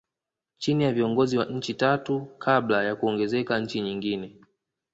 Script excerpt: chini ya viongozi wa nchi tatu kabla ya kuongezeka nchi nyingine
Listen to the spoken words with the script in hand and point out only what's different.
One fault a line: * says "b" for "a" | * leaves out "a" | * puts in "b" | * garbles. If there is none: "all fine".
all fine